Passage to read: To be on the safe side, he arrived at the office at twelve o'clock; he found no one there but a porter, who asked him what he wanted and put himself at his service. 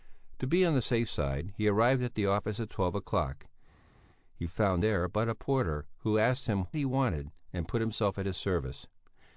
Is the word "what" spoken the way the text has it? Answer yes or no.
no